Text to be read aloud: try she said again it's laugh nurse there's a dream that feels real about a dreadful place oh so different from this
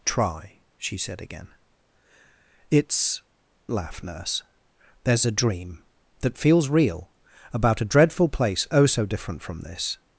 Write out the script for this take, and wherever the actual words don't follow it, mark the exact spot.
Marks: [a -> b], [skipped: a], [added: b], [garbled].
try she said again it's laugh nurse there's a dream that feels real about a dreadful place oh so different from this